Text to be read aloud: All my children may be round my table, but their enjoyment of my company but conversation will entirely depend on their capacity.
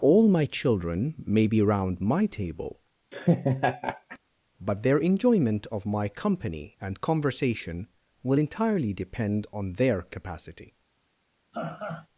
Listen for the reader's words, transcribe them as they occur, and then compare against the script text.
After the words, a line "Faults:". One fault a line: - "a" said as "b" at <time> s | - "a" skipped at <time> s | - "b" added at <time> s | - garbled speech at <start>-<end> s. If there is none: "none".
All my children may be round my table, but their enjoyment of my company and conversation will entirely depend on their capacity.
Faults:
- "but" said as "and" at 6.8 s